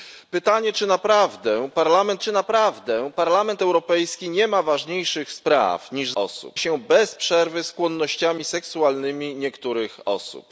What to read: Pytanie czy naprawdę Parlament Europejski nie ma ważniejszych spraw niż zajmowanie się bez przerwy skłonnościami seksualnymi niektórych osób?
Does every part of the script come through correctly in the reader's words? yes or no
no